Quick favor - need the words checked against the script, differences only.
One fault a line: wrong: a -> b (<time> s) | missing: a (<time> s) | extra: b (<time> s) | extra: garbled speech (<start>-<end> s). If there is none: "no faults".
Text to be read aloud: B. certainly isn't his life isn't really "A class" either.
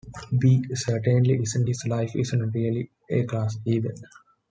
no faults